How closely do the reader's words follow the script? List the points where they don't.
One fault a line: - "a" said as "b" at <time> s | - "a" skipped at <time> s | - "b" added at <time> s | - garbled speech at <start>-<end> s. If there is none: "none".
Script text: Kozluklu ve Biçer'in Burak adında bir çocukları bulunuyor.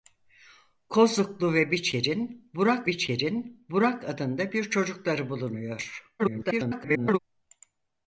- "Biçer'in Burak" added at 2.9 s
- garbled speech at 6.2-7.2 s